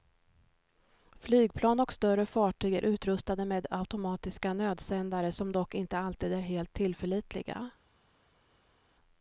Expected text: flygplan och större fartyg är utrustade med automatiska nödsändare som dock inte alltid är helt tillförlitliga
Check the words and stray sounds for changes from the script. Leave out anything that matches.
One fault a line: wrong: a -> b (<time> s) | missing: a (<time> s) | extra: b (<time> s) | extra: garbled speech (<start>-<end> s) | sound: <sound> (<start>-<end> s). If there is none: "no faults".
no faults